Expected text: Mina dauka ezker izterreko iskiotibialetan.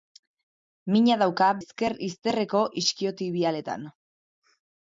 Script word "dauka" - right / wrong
right